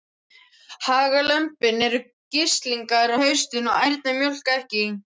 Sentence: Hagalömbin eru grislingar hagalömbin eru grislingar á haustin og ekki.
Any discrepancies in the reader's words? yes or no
yes